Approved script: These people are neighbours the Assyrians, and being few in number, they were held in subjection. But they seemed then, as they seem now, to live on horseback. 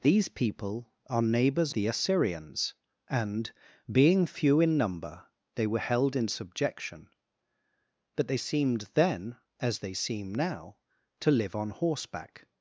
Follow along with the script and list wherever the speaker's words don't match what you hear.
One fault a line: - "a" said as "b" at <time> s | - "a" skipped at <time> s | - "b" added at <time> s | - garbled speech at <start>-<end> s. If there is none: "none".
none